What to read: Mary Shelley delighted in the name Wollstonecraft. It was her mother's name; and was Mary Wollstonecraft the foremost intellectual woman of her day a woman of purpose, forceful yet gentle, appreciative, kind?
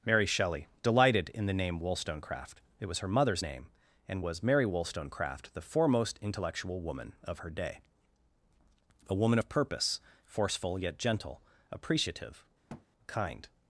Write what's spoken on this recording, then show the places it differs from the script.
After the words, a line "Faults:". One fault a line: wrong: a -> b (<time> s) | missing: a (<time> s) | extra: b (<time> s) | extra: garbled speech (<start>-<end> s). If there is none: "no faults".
Mary Shelley delighted in the name Wollstonecraft. It was her mother's name; and was Mary Wollstonecraft the foremost intellectual woman of her day a woman of purpose, forceful yet gentle, appreciative, kind?
Faults:
no faults